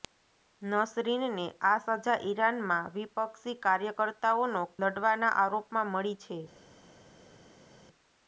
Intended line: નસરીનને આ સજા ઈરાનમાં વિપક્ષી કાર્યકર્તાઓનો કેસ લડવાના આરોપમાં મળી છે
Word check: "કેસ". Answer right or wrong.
wrong